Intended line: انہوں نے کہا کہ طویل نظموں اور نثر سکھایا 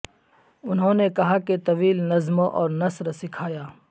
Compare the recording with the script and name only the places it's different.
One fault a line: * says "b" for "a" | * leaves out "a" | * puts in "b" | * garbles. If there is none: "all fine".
all fine